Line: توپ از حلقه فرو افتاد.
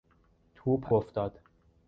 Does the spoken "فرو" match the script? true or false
false